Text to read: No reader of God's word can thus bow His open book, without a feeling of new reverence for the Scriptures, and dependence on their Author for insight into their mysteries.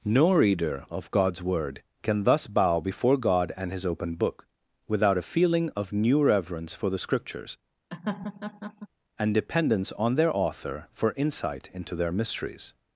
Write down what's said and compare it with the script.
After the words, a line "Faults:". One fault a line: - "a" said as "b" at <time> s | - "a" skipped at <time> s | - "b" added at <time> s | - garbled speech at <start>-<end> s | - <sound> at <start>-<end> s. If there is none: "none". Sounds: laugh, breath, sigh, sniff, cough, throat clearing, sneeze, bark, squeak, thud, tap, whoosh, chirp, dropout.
No reader of God's word can thus bow before God and His open book, without a feeling of new reverence for the Scriptures, and dependence on their Author for insight into their mysteries.
Faults:
- "before God and" added at 2.8 s
- laugh at 7.9-8.9 s